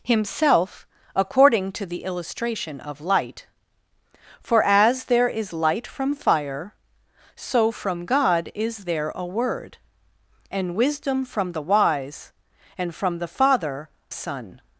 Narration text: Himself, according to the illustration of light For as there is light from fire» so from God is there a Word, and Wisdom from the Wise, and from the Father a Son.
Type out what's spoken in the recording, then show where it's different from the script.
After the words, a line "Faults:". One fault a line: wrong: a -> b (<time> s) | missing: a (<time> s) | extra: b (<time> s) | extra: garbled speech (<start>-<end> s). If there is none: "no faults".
Himself, according to the illustration of light For as there is light from fire» so from God is there a Word, and Wisdom from the Wise, and from the Father Son.
Faults:
missing: a (13.9 s)